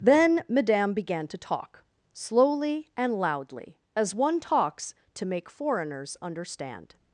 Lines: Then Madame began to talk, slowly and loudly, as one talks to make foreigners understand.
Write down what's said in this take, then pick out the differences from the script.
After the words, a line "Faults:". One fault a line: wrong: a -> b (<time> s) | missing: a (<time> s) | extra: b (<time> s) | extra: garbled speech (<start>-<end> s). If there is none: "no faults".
Then Madame began to talk, slowly and loudly, as one talks to make foreigners understand.
Faults:
no faults